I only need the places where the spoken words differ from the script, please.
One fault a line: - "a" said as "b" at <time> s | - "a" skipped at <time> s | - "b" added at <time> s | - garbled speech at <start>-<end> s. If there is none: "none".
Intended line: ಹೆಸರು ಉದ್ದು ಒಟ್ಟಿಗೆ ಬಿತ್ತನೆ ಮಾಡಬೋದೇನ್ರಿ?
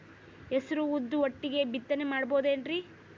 none